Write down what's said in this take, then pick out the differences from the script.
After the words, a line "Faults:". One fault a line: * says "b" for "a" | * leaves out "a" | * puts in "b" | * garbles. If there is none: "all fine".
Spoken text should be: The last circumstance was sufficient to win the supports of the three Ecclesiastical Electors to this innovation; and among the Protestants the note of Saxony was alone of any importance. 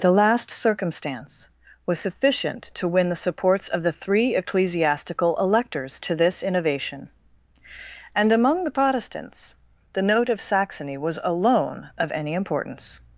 The last circumstance was sufficient to win the supports of the three Ecclesiastical Electors to this innovation; and among the Protestants the note of Saxony was alone of any importance.
Faults:
all fine